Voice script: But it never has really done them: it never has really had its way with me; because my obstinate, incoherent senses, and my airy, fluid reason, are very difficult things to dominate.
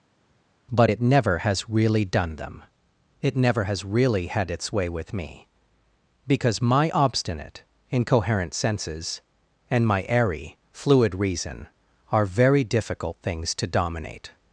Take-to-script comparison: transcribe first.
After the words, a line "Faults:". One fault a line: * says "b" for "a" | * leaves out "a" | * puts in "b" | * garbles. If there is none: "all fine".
But it never has really done them: it never has really had its way with me; because my obstinate, incoherent senses, and my airy, fluid reason, are very difficult things to dominate.
Faults:
all fine